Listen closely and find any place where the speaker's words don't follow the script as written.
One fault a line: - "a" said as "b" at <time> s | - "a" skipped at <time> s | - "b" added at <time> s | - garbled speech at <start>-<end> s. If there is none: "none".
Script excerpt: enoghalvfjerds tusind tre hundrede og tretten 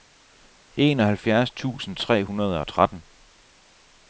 none